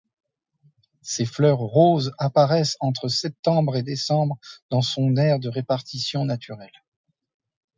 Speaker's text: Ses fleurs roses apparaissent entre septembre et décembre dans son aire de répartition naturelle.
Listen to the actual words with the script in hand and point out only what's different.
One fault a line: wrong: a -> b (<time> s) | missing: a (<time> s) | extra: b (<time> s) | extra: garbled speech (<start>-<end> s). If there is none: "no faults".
no faults